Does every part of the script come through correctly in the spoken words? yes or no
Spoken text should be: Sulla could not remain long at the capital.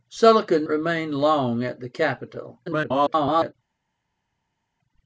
no